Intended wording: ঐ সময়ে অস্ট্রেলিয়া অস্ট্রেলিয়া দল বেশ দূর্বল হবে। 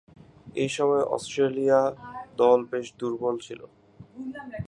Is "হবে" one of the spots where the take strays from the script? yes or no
yes